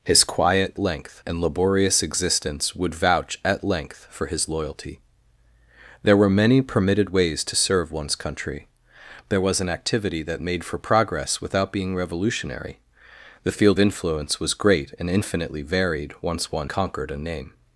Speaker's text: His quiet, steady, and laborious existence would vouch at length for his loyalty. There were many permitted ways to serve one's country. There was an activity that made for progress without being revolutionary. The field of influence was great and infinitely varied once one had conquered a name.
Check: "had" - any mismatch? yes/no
yes